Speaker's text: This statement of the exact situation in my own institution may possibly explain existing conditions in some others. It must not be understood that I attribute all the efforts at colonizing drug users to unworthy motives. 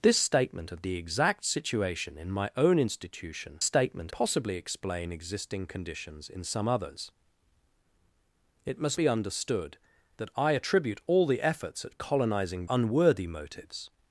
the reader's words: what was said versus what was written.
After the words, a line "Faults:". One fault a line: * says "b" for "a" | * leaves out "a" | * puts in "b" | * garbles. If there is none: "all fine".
This statement of the exact situation in my own institution statement possibly explain existing conditions in some others. It must be understood that I attribute all the efforts at colonizing unworthy motives.
Faults:
* says "statement" for "may"
* leaves out "not"
* leaves out "drug users to"